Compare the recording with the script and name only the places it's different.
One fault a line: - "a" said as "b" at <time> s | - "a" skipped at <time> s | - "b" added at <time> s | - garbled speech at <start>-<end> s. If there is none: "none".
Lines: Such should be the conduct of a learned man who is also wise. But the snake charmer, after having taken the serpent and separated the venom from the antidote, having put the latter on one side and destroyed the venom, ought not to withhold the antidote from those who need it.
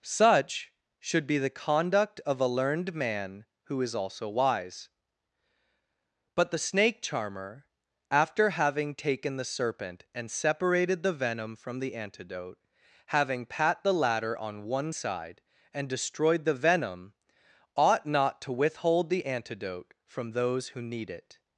- "put" said as "pat" at 13.4 s